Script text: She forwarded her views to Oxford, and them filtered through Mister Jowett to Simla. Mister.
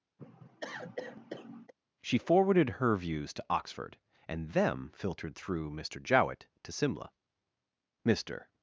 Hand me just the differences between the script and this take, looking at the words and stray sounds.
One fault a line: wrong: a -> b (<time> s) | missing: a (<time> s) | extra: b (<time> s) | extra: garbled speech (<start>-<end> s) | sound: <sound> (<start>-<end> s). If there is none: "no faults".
sound: cough (0.2-1.7 s)